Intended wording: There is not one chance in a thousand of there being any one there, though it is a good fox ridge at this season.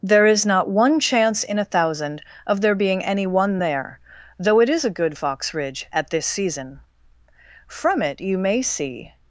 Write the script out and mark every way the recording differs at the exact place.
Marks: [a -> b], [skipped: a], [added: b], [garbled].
There is not one chance in a thousand of there being any one there, though it is a good fox ridge at this season. [added: From it you may see]